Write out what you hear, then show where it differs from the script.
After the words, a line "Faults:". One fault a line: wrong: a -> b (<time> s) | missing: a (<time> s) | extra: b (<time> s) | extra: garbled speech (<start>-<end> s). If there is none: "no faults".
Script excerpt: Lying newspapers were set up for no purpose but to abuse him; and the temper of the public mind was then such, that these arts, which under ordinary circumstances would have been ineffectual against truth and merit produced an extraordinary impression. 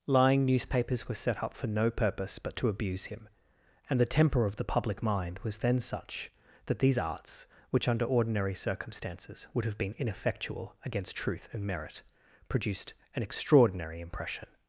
Lying newspapers were set up for no purpose but to abuse him; and the temper of the public mind was then such, that these arts, which under ordinary circumstances would have been ineffectual against truth and merit produced an extraordinary impression.
Faults:
no faults